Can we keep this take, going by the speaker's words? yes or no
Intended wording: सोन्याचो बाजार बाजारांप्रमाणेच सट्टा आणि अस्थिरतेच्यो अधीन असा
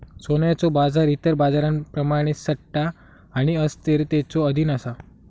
no